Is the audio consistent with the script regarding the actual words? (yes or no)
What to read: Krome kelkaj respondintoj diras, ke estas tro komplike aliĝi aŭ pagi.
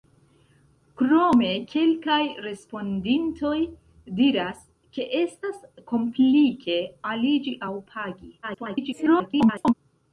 no